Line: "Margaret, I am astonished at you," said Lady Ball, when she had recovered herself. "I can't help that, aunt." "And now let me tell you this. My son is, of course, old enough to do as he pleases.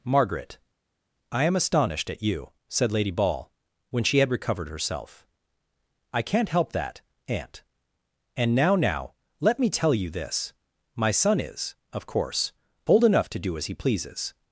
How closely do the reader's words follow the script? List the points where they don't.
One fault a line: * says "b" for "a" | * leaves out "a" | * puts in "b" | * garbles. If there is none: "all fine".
* puts in "now"